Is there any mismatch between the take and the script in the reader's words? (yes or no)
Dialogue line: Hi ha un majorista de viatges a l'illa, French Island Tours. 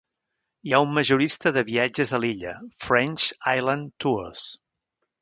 no